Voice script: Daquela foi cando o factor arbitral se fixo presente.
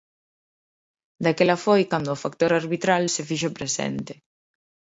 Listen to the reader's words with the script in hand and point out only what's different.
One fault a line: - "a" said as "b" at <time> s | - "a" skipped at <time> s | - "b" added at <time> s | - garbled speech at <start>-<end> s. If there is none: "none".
none